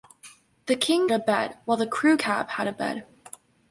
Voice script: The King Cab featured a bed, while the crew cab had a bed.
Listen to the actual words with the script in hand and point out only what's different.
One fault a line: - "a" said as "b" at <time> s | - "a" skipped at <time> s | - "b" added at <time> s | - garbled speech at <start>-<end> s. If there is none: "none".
- "Cab featured" skipped at 1.1 s